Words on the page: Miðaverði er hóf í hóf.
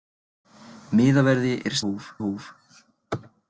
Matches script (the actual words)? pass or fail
pass